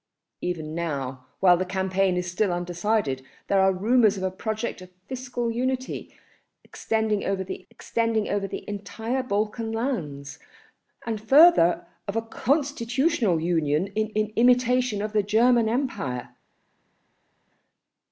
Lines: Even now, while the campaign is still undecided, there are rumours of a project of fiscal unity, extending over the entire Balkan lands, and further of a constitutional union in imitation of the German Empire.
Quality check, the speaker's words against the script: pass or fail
fail